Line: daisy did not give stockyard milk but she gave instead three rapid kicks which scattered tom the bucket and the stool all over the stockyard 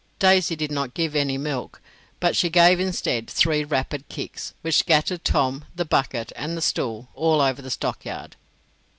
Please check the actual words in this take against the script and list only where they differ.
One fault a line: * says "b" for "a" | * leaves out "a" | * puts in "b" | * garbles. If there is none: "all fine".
* says "any" for "stockyard"